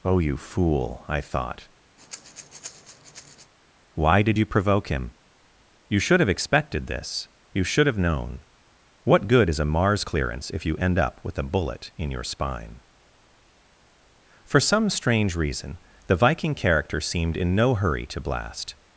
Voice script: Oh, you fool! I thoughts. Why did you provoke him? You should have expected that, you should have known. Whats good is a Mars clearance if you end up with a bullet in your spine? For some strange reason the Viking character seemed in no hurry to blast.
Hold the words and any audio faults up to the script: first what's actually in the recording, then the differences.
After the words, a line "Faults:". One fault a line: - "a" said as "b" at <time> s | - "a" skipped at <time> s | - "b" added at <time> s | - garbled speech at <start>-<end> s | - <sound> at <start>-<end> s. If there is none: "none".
Oh, you fool! I thought. Why did you provoke him? You should have expected this, you should have known. What good is a Mars clearance if you end up with a bullet in your spine? For some strange reason the Viking character seemed in no hurry to blast.
Faults:
- "thoughts" said as "thought" at 1.2 s
- breath at 2.0-3.5 s
- "that" said as "this" at 6.9 s
- "Whats" said as "What" at 9.0 s